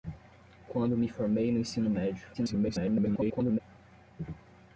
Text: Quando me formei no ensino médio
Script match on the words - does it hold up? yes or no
no